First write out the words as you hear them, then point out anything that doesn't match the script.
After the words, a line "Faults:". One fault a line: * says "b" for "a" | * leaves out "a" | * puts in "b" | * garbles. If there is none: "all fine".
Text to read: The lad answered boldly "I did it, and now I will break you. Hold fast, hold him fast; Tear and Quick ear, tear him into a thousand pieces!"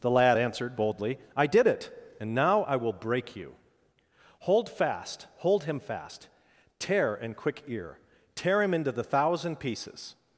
The lad answered boldly "I did it, and now I will break you. Hold fast, hold him fast; Tear and Quick ear, tear him into the thousand pieces!"
Faults:
* says "the" for "a"